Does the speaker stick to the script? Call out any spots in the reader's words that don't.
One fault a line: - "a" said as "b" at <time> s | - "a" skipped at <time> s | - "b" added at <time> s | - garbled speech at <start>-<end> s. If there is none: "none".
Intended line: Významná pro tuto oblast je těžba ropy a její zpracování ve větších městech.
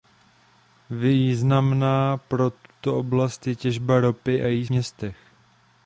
- "zpracování ve větších" skipped at 4.7 s